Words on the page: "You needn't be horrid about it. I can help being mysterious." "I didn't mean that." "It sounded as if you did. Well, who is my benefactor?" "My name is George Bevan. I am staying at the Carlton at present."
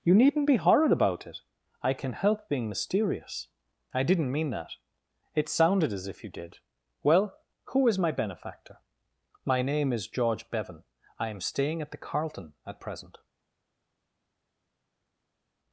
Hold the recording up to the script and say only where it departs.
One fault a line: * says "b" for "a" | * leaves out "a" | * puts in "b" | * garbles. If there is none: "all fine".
all fine